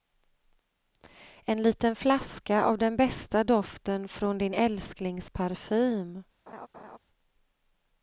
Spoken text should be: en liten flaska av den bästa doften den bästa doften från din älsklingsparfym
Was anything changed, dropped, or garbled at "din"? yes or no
no